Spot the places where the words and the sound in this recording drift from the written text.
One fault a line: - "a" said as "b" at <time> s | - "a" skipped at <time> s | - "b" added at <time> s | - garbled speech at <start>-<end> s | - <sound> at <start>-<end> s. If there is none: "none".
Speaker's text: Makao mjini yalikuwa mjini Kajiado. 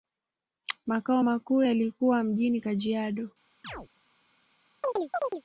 - "mjini" said as "makuu" at 1.2 s
- chirp at 3.6-3.9 s
- chirp at 4.8-5.4 s